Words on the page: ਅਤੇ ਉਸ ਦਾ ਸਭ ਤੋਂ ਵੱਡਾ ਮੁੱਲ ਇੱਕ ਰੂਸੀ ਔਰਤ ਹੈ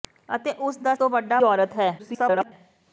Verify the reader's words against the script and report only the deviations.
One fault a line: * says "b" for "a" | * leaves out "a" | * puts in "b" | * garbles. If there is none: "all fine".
* leaves out "ਸਭ"
* leaves out "ਮੁੱਲ ਇੱਕ ਰੂਸੀ"
* garbles